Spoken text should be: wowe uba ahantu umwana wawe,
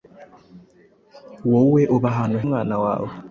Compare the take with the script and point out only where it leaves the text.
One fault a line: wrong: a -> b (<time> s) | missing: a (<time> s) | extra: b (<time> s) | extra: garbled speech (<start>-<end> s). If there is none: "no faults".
no faults